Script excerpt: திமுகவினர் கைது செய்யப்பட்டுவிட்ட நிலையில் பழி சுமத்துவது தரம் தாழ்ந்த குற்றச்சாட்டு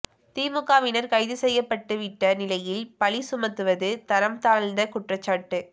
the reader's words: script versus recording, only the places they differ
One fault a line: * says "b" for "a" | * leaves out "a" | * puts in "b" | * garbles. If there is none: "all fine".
all fine